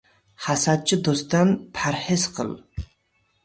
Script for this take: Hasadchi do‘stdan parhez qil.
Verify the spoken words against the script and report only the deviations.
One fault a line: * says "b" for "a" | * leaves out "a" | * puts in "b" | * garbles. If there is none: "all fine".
all fine